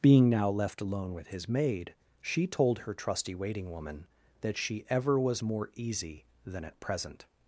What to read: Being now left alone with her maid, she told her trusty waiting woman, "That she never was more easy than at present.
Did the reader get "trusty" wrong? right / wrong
right